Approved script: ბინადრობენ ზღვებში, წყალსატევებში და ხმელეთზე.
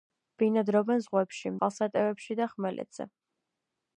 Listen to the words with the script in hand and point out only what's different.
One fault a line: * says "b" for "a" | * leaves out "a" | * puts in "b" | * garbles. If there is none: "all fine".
all fine